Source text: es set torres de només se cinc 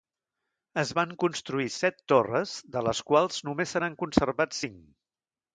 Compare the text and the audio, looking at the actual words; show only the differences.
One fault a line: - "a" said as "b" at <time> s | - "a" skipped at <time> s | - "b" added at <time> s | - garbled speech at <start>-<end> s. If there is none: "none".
- "van construir" added at 1.0 s
- "les quals" added at 2.9 s
- "n'han conservat" added at 3.9 s